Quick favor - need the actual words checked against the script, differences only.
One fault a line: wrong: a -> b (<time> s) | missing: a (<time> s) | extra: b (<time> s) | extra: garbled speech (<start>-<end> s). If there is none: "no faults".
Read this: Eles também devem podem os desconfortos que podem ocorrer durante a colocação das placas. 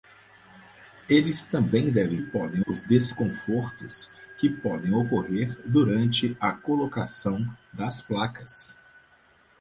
no faults